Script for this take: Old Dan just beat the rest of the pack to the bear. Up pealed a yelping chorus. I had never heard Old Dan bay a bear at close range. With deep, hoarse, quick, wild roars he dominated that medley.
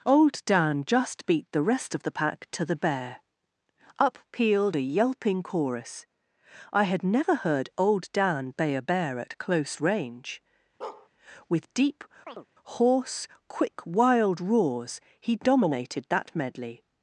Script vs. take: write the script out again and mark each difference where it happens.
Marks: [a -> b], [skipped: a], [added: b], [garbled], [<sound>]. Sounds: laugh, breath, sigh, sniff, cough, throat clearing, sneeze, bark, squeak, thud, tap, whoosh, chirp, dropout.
Old Dan just beat the rest of the pack to the bear. Up pealed a yelping chorus. I had never heard Old Dan bay a bear at close range. [bark] With deep, [chirp] hoarse, quick, wild roars he dominated that medley.